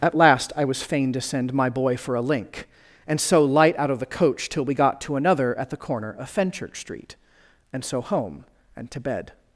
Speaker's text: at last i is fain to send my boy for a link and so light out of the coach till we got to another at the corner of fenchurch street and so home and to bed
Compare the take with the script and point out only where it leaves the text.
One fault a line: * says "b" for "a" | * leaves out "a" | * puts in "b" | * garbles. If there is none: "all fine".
* says "was" for "is"